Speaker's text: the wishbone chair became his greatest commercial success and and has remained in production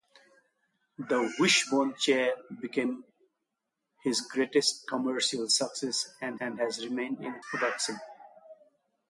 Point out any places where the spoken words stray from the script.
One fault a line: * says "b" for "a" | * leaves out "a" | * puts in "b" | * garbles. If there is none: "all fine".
all fine